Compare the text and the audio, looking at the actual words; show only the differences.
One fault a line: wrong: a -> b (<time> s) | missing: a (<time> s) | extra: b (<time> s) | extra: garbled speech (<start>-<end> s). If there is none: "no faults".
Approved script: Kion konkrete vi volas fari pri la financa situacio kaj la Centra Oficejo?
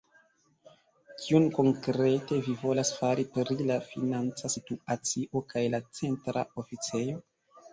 no faults